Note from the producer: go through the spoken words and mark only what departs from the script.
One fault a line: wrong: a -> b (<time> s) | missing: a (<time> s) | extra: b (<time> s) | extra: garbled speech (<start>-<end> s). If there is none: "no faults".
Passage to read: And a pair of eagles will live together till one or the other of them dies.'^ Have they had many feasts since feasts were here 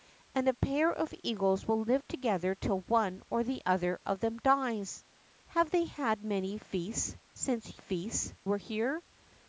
no faults